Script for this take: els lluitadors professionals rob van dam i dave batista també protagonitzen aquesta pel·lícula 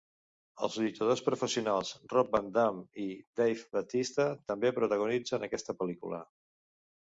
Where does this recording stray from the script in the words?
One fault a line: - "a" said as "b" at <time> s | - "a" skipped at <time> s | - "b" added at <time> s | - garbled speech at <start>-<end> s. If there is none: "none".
none